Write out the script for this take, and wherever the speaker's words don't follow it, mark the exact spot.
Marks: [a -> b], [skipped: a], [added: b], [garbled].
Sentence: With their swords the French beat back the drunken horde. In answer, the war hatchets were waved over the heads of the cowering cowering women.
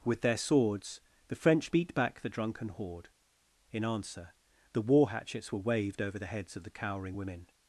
With their swords the French beat back the drunken horde. In answer, the war hatchets were waved over the heads of the cowering [skipped: cowering] women.